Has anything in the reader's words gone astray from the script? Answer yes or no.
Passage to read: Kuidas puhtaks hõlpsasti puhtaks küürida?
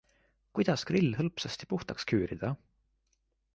yes